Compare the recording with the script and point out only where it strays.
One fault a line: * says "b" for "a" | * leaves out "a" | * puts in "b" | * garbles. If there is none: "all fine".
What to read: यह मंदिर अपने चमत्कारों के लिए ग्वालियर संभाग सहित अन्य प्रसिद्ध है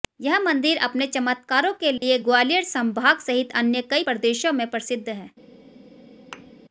* puts in "कई प्रदेशों में"